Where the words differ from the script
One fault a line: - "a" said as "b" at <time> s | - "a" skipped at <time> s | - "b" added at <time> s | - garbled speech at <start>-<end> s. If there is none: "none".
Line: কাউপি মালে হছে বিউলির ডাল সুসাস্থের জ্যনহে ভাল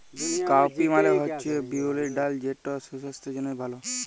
- "যেট" added at 2.4 s